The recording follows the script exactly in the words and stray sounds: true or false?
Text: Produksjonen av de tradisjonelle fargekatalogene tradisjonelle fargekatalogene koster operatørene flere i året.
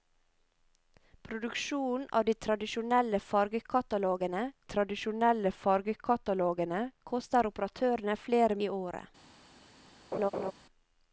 false